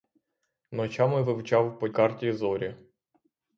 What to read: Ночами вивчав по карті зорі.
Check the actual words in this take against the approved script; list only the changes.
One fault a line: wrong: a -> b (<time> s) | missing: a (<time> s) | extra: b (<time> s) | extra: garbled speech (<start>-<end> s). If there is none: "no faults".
no faults